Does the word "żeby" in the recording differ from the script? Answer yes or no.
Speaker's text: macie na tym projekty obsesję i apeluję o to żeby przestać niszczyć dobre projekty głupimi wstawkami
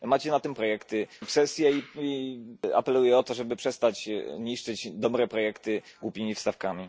no